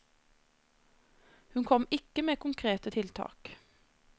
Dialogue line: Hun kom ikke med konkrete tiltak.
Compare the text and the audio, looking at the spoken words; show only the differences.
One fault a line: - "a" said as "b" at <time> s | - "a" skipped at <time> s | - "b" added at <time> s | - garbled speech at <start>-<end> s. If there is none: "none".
none